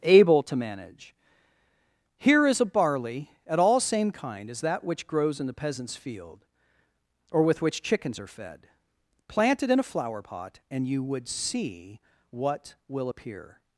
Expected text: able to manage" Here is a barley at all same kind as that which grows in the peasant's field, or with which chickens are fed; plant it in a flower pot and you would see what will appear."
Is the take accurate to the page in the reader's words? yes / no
yes